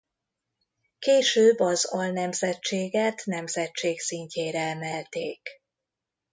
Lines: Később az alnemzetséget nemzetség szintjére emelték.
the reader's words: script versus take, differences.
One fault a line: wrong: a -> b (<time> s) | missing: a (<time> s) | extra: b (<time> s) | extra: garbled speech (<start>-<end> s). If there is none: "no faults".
no faults